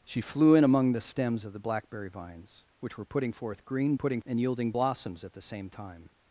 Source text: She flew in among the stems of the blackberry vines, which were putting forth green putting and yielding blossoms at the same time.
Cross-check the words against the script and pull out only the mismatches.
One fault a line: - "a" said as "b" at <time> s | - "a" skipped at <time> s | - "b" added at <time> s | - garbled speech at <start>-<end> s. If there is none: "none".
none